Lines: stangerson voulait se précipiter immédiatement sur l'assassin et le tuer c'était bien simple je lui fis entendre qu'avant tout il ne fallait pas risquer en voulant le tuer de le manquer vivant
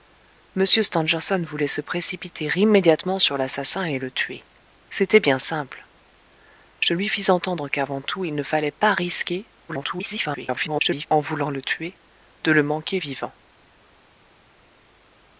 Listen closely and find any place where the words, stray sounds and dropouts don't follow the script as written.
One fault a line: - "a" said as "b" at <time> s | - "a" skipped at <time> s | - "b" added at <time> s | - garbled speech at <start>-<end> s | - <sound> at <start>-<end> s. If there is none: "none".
- garbled speech at 9.7-11.1 s